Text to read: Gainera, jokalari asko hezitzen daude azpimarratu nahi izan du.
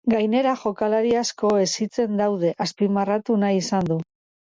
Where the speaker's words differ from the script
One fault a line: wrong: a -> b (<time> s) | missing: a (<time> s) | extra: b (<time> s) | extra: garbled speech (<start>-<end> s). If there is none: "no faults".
no faults